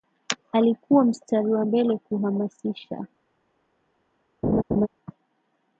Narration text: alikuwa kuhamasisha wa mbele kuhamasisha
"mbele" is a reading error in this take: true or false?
false